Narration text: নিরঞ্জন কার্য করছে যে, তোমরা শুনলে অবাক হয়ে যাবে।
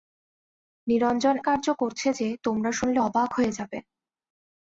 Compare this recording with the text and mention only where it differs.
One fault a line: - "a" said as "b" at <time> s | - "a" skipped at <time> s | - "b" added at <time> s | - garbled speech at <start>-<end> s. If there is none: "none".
none